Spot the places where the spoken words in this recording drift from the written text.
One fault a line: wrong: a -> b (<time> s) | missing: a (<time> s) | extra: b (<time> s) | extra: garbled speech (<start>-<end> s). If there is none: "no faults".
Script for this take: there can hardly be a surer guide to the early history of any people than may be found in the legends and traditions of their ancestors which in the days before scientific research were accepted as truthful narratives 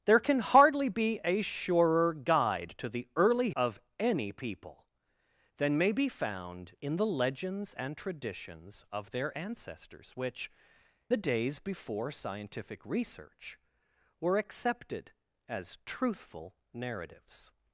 missing: history (3.5 s)
missing: in (10.5 s)